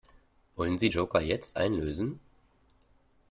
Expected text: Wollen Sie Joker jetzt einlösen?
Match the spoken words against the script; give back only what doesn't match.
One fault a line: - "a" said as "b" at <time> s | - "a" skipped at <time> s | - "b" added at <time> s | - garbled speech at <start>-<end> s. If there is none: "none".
none